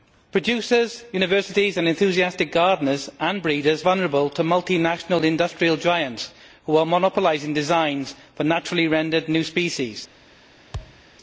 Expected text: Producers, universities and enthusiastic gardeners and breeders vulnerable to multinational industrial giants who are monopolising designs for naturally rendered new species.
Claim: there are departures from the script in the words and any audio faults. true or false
true